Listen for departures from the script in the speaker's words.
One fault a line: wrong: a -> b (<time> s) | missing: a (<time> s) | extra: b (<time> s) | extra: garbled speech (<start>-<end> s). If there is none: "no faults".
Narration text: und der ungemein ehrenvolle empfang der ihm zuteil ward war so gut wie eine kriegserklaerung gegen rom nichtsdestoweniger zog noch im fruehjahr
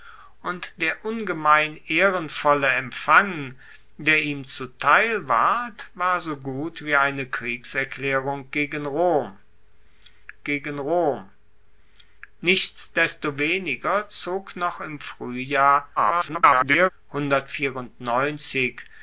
extra: gegen rom (10.4 s)
extra: garbled speech (16.0-16.9 s)